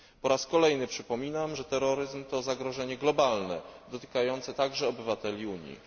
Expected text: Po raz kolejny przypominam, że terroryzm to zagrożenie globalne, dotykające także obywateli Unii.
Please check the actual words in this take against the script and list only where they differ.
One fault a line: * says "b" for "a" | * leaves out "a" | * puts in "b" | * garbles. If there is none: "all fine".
all fine